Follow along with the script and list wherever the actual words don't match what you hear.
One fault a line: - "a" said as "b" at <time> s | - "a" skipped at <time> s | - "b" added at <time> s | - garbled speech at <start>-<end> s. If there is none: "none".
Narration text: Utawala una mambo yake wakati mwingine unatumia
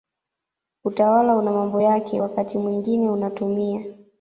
none